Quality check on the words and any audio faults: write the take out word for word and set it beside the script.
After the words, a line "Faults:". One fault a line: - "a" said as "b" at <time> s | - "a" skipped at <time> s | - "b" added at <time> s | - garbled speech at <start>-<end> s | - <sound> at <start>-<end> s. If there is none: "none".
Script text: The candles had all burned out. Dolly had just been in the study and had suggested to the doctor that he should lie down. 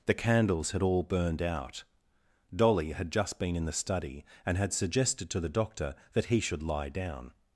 The candles had all burned out. Dolly had just been in the study and had suggested to the doctor that he should lie down.
Faults:
none